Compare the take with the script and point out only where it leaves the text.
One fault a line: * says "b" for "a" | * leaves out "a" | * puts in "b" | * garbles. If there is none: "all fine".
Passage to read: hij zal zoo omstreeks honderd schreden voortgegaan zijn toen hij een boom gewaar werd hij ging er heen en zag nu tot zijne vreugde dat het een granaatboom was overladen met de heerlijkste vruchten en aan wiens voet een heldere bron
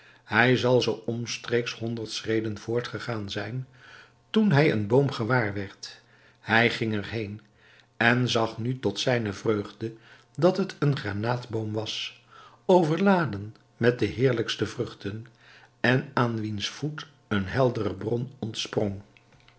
all fine